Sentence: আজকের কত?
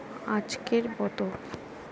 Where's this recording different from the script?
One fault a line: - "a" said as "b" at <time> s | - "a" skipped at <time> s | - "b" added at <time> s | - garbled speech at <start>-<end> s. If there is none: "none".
none